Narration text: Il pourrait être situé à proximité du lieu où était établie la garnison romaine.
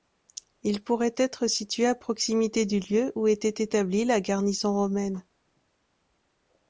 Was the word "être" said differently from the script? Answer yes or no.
no